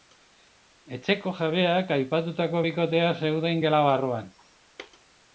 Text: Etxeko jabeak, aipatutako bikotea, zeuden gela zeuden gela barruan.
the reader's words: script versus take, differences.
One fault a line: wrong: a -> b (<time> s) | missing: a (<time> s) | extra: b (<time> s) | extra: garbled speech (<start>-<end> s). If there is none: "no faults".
missing: zeuden gela (3.8 s)